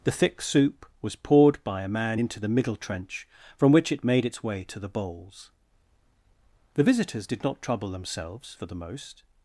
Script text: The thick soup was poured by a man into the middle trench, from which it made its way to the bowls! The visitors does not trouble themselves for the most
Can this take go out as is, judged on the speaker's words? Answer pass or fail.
fail